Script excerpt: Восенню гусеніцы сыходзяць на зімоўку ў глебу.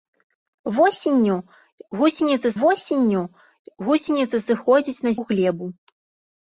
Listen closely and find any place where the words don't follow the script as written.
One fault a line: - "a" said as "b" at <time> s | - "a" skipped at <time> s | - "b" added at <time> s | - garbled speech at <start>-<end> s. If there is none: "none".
- "восенню гусеніцы" added at 2.6 s
- "зімоўку" skipped at 5.2 s